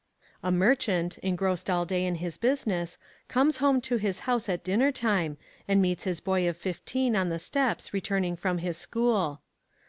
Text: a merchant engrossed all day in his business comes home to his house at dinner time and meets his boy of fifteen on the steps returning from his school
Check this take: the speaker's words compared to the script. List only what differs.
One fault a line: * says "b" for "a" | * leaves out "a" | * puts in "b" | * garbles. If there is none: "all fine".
all fine